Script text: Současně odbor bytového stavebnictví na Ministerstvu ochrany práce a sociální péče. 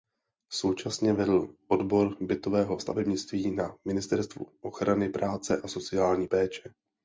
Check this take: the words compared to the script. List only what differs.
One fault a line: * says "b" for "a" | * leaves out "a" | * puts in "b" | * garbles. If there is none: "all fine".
* puts in "vedl"